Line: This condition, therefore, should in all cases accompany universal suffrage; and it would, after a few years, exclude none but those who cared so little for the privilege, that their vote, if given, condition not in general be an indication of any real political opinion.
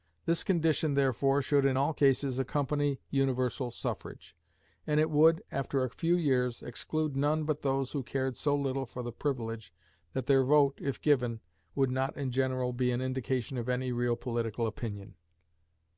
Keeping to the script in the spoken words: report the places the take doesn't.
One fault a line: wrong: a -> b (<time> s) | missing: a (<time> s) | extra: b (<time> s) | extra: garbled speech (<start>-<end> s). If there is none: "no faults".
wrong: condition -> would (11.8 s)